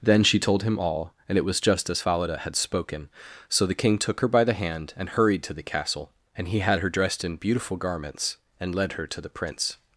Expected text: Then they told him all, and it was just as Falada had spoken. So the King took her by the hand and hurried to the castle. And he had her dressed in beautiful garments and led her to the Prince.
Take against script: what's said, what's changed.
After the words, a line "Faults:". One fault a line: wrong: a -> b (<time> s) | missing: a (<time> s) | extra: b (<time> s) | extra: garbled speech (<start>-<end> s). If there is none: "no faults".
Then she told him all, and it was just as Falada had spoken. So the King took her by the hand and hurried to the castle. And he had her dressed in beautiful garments and led her to the Prince.
Faults:
wrong: they -> she (0.2 s)